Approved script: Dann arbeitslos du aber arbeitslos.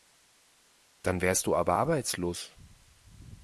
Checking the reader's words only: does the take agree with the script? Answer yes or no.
no